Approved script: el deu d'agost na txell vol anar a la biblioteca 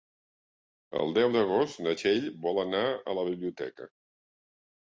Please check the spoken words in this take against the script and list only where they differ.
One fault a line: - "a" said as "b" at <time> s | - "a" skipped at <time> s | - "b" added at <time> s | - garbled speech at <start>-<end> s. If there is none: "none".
none